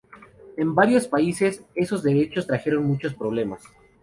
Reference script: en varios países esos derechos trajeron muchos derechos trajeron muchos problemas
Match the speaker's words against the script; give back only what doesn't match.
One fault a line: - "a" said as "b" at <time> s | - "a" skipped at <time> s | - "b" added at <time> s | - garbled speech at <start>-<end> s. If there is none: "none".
- "derechos trajeron muchos" skipped at 3.1 s